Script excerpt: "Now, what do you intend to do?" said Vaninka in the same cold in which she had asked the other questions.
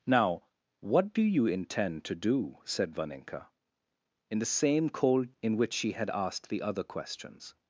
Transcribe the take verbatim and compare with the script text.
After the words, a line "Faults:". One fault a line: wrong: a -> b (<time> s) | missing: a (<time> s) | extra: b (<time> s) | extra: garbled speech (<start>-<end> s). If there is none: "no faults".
"Now, what do you intend to do?" said Vaninka in the same cold in which she had asked the other questions.
Faults:
no faults